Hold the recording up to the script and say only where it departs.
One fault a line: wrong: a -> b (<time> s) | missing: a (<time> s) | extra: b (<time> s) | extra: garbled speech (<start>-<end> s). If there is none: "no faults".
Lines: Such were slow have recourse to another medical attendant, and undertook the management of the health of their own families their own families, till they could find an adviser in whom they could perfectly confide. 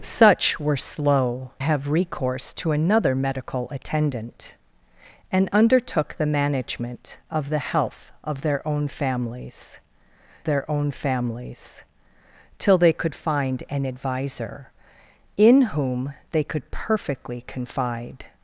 no faults